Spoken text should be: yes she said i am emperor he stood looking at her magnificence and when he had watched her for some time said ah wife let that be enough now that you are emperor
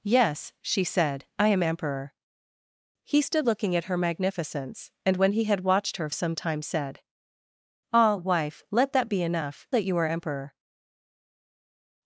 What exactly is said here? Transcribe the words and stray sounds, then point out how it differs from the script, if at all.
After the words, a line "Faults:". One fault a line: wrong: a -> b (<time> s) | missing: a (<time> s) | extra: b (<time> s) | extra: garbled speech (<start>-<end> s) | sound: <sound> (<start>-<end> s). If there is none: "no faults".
yes she said i am emperor he stood looking at her magnificence and when he had watched her some time said ah wife let that be enough that you are emperor
Faults:
missing: for (6.1 s)
missing: now (9.7 s)